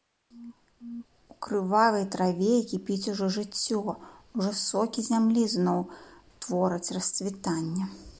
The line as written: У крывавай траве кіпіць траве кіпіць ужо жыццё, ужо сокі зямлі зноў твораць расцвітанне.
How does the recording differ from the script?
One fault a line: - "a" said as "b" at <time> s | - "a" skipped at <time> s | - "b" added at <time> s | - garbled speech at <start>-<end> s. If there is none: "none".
- "траве кіпіць" skipped at 3.1 s